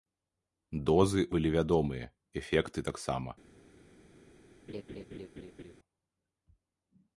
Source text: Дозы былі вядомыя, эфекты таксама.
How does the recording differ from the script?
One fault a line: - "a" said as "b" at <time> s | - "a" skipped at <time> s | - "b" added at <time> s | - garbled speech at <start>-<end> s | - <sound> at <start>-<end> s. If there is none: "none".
- laugh at 4.7-5.7 s